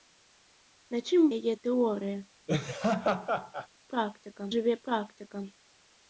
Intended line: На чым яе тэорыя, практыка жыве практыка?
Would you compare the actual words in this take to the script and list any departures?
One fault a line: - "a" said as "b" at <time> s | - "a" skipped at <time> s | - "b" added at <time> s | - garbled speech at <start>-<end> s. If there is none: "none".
none